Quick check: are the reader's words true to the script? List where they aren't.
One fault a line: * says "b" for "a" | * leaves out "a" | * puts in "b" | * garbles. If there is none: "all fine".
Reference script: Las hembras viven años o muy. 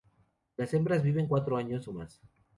* puts in "cuatro"
* says "más" for "muy"